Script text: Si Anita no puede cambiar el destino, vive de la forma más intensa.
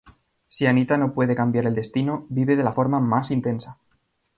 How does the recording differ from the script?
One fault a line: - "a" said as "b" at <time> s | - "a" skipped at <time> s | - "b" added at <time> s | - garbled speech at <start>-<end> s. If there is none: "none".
none